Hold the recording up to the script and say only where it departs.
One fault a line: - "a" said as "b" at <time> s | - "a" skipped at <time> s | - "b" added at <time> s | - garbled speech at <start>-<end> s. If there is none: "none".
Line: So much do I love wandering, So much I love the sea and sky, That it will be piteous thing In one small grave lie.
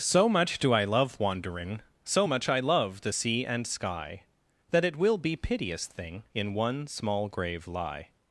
none